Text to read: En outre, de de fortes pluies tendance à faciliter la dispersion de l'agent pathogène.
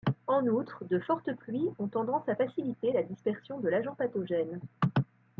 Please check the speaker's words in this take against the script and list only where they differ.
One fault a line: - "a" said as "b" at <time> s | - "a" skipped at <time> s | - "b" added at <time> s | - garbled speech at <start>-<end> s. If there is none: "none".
- "de" skipped at 1.0 s
- "ont" added at 1.8 s